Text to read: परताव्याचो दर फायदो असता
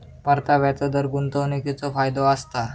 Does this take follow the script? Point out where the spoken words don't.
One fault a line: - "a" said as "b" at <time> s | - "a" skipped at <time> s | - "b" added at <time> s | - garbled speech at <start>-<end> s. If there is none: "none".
- "गुंतवणीकीचो" added at 1.1 s